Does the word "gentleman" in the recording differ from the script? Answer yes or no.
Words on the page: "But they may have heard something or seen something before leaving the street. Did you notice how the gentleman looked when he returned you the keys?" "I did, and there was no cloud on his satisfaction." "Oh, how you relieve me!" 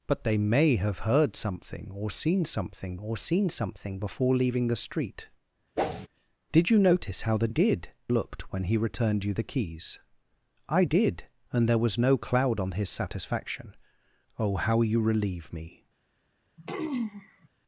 yes